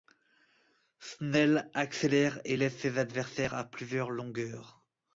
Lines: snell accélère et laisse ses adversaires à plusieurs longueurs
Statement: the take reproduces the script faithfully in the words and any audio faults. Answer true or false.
true